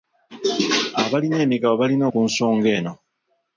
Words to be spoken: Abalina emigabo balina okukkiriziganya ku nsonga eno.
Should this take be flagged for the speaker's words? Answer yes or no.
yes